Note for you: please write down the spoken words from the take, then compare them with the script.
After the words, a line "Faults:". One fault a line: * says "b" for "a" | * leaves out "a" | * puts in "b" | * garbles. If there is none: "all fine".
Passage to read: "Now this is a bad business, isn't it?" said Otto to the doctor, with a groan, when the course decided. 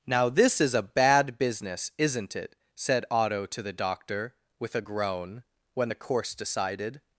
"Now this is a bad business, isn't it?" said Otto to the doctor, with a groan, when the course decided.
Faults:
all fine